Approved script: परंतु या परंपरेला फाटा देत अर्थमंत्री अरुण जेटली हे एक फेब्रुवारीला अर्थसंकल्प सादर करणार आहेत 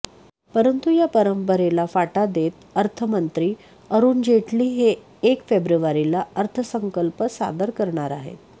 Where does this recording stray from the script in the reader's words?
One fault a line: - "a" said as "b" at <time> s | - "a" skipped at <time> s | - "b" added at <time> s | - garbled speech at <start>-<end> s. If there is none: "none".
none